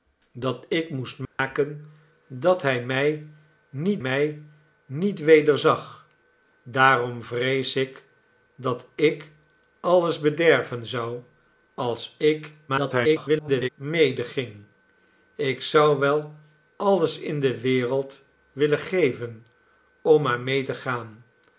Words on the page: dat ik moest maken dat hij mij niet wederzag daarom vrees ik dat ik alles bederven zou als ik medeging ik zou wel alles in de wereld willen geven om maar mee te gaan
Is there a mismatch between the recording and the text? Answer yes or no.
yes